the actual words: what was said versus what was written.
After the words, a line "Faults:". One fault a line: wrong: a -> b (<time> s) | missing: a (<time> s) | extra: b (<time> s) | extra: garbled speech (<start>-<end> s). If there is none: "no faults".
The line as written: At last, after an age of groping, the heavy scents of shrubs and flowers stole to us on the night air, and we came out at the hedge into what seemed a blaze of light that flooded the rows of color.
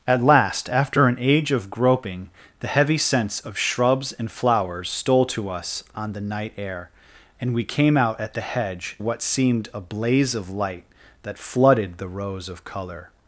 At last, after an age of groping, the heavy scents of shrubs and flowers stole to us on the night air, and we came out at the hedge what seemed a blaze of light that flooded the rows of color.
Faults:
missing: into (9.0 s)